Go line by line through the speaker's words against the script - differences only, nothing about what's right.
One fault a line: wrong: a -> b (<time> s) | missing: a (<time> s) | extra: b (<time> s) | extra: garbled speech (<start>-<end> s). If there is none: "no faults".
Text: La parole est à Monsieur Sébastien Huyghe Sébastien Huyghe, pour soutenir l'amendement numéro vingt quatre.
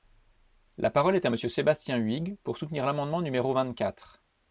missing: Sébastien Huyghe (2.4 s)